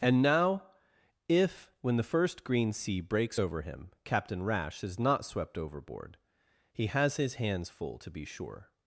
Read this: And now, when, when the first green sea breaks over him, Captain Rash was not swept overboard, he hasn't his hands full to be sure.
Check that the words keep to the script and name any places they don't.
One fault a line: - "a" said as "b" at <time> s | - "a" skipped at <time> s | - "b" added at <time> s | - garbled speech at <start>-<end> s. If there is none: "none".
- "when" said as "if" at 1.3 s
- "was" said as "is" at 4.8 s
- "hasn't" said as "has" at 6.9 s